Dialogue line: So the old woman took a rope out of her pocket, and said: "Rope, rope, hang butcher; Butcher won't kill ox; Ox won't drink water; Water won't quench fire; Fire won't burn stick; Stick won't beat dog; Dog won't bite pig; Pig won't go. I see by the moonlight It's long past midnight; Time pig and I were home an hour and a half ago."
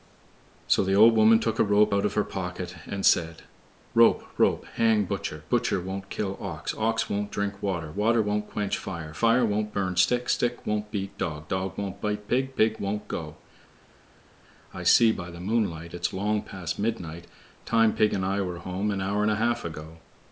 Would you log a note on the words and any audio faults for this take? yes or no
no